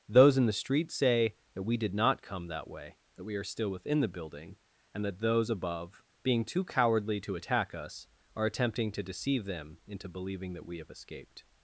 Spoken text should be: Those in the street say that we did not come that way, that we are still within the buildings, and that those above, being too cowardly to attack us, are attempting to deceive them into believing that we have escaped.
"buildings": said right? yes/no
no